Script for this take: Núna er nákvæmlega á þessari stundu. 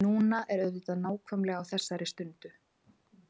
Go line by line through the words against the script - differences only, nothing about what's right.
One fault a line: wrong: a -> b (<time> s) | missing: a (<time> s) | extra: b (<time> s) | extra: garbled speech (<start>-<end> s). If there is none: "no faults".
extra: auðvitað (0.6 s)